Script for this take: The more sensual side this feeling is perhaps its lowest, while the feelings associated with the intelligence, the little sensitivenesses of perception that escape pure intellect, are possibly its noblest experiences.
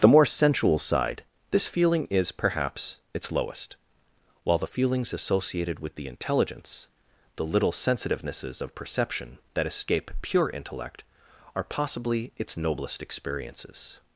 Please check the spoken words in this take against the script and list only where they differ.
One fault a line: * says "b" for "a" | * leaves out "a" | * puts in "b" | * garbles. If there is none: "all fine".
all fine